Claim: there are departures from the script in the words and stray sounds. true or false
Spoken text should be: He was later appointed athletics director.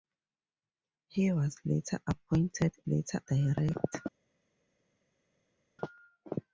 true